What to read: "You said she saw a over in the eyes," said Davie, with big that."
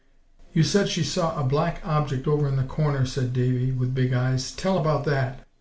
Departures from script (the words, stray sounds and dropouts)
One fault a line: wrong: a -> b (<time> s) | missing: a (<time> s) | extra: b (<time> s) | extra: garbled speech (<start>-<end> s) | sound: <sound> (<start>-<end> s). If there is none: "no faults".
extra: black object (1.4 s)
wrong: eyes -> corner (2.6 s)
extra: eyes tell about (4.1 s)